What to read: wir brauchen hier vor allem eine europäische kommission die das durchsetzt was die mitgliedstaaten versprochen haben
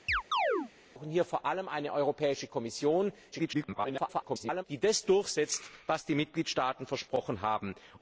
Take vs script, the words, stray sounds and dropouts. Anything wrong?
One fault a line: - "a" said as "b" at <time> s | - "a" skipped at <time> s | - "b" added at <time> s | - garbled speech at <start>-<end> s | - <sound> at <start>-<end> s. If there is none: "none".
- chirp at 0.1-0.7 s
- garbled speech at 3.3-4.6 s